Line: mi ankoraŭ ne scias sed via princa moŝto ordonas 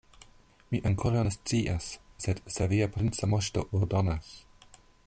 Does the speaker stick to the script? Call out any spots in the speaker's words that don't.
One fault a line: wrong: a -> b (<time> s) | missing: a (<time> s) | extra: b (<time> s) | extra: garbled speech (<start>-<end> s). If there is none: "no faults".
extra: se (2.6 s)